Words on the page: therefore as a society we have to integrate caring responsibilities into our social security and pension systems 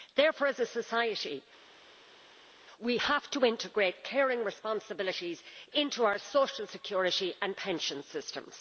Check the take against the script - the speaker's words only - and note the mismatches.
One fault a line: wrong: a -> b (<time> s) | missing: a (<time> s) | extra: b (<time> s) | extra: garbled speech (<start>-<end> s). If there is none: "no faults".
no faults